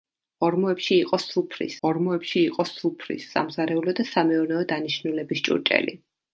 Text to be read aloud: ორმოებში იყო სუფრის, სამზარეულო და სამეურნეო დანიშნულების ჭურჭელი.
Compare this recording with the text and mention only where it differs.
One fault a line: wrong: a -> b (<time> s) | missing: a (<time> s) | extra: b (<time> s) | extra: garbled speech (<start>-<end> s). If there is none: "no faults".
extra: ორმოებში იყო სუფრის (1.9 s)